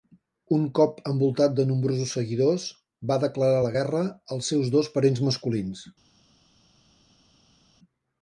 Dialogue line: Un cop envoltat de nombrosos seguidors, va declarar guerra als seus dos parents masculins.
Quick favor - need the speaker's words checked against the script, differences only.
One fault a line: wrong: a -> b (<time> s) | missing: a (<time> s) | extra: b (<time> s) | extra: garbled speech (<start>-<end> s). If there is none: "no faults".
extra: la (3.6 s)